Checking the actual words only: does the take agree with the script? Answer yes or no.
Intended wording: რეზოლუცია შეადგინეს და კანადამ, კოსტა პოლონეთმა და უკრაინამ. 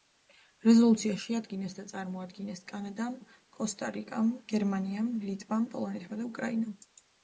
no